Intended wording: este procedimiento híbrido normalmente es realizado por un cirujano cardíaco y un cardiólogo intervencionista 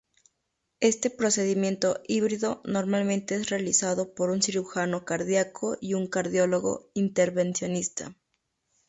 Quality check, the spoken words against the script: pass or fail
pass